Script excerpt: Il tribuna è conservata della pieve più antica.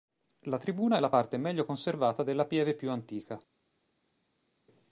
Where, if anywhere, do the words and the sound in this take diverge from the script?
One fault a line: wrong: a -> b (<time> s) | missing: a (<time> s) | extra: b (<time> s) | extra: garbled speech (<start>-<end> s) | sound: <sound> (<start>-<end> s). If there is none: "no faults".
wrong: Il -> La (0.5 s)
extra: la parte meglio (1.0 s)